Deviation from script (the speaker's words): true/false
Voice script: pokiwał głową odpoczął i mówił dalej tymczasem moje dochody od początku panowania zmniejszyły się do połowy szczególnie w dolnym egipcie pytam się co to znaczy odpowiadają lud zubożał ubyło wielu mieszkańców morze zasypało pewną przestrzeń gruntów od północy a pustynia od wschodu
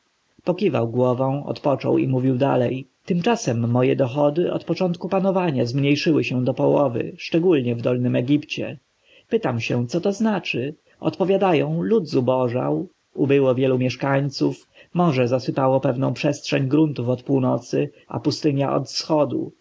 false